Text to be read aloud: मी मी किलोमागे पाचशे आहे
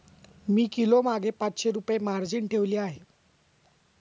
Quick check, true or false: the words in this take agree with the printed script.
false